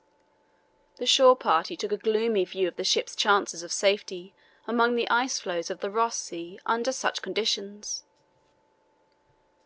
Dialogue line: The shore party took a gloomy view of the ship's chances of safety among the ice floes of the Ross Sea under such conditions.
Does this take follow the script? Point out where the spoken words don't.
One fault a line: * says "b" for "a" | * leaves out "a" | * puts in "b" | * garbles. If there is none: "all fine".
all fine